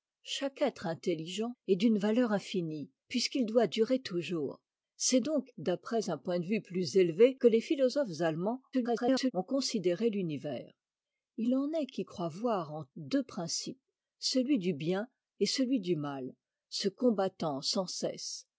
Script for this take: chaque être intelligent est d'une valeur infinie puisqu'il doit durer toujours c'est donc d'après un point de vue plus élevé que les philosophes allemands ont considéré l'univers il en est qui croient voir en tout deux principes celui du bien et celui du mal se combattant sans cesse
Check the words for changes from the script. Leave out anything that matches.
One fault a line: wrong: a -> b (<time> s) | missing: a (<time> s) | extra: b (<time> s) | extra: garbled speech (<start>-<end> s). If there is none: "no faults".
extra: garbled speech (8.7-9.3 s)
missing: tout (12.9 s)